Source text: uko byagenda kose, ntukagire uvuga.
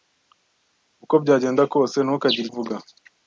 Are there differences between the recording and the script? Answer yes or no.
no